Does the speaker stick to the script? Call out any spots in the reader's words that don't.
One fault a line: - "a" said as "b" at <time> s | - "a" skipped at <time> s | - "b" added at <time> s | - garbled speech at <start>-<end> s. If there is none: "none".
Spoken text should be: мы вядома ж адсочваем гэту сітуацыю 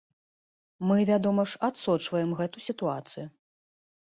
none